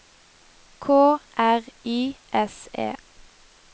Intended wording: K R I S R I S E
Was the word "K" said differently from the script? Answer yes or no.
no